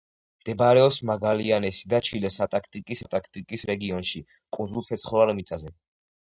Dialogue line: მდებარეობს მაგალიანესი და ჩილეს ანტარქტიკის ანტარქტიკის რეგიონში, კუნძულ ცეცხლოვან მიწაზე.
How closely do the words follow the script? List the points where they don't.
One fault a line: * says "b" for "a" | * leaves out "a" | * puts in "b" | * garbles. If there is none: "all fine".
all fine